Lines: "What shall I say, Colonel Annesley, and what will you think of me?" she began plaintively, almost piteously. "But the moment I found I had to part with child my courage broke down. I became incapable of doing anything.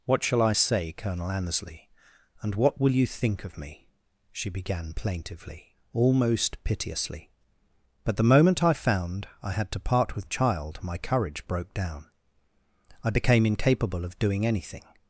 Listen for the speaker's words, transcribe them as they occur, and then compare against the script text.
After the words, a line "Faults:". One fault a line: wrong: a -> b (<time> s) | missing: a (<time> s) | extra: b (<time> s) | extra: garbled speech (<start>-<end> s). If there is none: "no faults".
"What shall I say, Colonel Annesley, and what will you think of me?" she began plaintively, almost piteously. "But the moment I found I had to part with child my courage broke down. I became incapable of doing anything.
Faults:
no faults